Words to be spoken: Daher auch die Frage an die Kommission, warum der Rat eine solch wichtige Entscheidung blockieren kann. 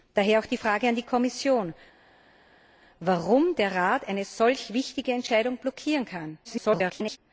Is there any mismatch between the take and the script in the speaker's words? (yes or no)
yes